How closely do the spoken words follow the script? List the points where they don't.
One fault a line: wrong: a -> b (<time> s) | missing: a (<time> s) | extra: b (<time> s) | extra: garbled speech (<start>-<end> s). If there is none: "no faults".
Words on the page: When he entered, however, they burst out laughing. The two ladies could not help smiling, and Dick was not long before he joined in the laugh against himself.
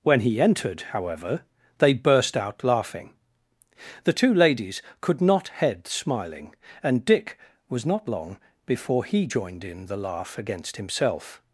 wrong: help -> head (5.5 s)